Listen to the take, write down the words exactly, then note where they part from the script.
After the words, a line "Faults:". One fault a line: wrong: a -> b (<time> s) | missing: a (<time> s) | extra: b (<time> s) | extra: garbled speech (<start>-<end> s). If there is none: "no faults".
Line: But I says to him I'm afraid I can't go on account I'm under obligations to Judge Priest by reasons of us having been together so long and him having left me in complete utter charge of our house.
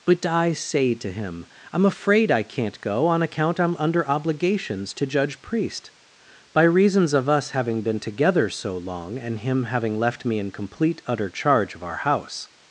But I say to him I'm afraid I can't go on account I'm under obligations to Judge Priest by reasons of us having been together so long and him having left me in complete utter charge of our house.
Faults:
wrong: says -> say (0.5 s)